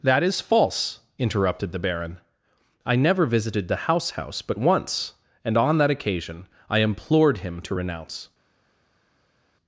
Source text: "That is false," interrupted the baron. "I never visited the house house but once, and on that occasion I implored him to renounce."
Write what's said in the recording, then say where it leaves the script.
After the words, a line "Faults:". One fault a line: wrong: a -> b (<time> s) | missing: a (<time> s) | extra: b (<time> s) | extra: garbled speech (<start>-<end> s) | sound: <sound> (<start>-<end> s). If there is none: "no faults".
"That is false," interrupted the baron. "I never visited the house house but once, and on that occasion I implored him to renounce."
Faults:
no faults